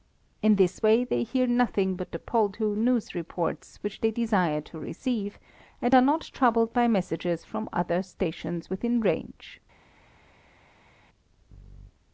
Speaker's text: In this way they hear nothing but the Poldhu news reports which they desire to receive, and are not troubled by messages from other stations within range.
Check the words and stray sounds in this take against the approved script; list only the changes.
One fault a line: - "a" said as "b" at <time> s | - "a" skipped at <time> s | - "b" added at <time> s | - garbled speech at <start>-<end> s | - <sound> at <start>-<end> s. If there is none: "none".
none